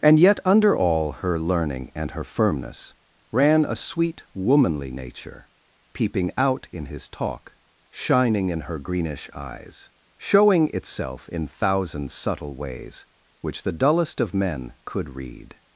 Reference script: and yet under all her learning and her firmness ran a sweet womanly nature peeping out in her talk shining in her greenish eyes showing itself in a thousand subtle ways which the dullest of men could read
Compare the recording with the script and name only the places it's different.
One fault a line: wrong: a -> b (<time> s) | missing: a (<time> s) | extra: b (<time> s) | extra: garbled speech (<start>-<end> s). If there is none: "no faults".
wrong: her -> his (6.9 s)
missing: a (11.5 s)